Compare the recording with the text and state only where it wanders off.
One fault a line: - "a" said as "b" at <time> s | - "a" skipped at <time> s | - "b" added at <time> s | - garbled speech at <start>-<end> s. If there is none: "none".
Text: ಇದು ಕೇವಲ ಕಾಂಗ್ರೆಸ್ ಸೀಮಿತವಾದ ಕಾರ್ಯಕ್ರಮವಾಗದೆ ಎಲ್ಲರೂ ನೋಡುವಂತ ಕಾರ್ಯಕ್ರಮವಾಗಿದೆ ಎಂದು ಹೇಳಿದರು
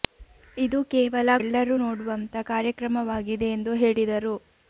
- "ಕಾಂಗ್ರೆಸ್ ಸೀಮಿತವಾದ ಕಾರ್ಯಕ್ರಮವಾಗದೆ" skipped at 1.3 s